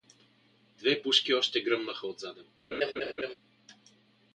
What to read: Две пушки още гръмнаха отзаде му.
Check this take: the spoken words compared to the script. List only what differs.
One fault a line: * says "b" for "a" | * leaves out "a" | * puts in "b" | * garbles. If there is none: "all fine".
all fine